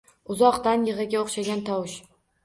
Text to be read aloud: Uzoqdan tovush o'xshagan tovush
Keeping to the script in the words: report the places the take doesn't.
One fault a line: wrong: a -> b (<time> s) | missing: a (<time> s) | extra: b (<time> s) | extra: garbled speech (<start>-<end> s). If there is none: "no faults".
wrong: tovush -> yig'iga (0.9 s)